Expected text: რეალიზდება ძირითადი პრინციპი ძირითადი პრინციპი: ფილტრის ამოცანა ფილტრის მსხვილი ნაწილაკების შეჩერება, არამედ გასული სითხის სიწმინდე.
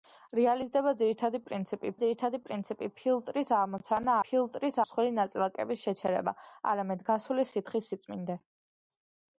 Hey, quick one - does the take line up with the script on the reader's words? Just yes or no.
yes